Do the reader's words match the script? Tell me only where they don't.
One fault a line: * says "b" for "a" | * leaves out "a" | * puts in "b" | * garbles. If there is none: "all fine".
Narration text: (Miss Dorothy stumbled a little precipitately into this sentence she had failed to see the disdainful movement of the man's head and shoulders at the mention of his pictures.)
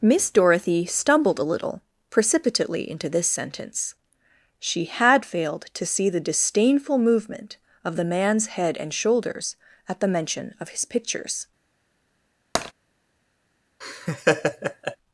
all fine